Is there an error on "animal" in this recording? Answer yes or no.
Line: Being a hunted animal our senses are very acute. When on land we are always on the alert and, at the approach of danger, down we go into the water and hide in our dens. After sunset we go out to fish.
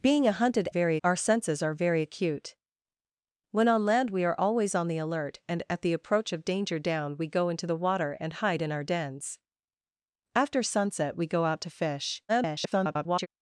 yes